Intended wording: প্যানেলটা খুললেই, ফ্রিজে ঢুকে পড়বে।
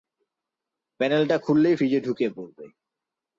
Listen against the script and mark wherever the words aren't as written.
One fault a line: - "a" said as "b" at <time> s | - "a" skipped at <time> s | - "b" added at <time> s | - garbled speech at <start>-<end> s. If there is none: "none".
none